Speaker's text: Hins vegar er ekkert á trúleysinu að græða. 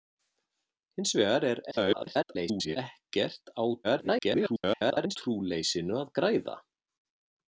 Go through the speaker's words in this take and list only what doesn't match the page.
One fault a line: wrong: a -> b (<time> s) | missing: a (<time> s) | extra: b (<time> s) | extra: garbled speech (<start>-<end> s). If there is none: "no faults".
extra: garbled speech (1.7-2.8 s)
extra: garbled speech (3.8-5.2 s)